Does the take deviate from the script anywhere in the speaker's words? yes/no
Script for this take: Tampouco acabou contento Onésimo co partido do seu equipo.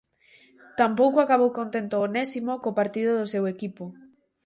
no